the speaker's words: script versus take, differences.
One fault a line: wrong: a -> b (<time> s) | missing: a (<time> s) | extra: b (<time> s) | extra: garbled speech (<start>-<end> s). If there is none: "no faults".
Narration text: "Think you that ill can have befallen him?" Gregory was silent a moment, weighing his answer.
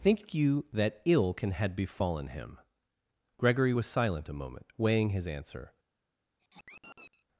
wrong: have -> had (1.5 s)